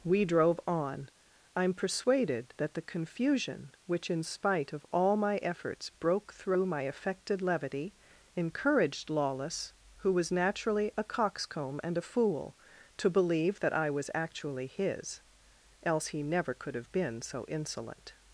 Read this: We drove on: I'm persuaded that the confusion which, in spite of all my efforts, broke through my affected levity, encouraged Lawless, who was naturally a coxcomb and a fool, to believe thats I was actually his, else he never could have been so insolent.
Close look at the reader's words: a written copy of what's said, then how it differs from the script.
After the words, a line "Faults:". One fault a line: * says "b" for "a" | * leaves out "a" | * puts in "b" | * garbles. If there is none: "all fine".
We drove on: I'm persuaded that the confusion which, in spite of all my efforts, broke through my affected levity, encouraged Lawless, who was naturally a coxcomb and a fool, to believe that I was actually his, else he never could have been so insolent.
Faults:
* says "that" for "thats"